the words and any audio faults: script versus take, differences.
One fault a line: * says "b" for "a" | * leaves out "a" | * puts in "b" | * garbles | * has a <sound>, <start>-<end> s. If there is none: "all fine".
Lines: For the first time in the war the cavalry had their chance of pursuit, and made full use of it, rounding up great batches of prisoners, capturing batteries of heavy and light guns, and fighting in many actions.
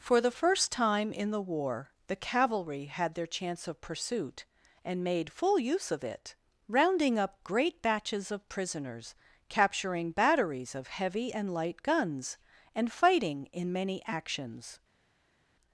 all fine